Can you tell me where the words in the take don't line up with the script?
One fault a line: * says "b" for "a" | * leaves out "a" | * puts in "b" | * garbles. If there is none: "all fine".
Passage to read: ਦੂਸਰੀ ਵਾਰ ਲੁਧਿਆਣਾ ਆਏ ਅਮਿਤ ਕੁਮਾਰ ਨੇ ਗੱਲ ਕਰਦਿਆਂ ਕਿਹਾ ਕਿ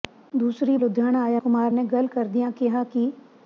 * leaves out "ਵਾਰ"
* leaves out "ਅਮਿਤ"